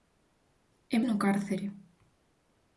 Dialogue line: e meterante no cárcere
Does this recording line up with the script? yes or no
no